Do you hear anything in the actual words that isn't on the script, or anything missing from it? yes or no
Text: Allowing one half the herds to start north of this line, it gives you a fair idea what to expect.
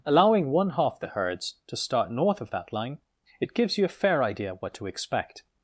yes